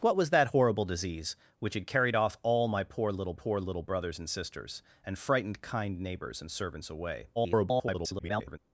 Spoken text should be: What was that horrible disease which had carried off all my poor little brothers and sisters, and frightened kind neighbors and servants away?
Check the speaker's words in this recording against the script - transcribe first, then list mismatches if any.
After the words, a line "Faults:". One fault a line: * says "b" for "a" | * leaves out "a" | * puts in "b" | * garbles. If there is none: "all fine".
What was that horrible disease which had carried off all my poor little poor little brothers and sisters, and frightened kind neighbors and servants away? [garbled]
Faults:
* puts in "poor little"
* garbles